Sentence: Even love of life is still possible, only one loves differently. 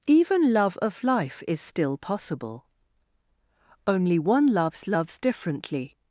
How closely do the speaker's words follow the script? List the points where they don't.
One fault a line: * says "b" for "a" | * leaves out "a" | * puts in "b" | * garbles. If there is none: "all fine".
* puts in "loves"